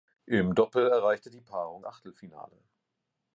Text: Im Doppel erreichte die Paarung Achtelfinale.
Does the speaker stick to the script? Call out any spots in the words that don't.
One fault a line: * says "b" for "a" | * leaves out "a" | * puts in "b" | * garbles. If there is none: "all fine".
all fine